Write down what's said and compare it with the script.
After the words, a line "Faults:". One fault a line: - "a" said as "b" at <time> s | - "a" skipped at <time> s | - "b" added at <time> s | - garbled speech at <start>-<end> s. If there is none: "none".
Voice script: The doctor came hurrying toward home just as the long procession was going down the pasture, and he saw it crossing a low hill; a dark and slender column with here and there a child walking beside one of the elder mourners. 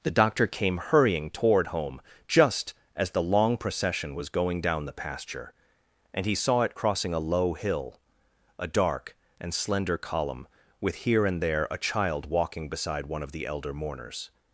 The doctor came hurrying toward home just as the long procession was going down the pasture, and he saw it crossing a low hill; a dark and slender column with here and there a child walking beside one of the elder mourners.
Faults:
none